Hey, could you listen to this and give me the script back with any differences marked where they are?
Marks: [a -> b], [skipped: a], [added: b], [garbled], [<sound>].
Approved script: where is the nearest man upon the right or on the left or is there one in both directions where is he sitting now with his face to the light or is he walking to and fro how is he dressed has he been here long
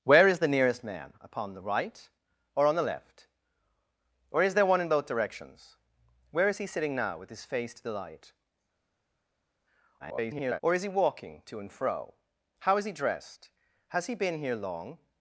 where is the nearest man upon the right or on the left or is there one in both directions where is he sitting now with his face to the light [garbled] or is he walking to and fro how is he dressed has he been here long